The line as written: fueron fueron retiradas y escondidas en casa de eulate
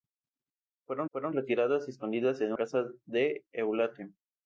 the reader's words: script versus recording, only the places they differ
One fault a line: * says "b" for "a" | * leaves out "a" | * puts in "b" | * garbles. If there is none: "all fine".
all fine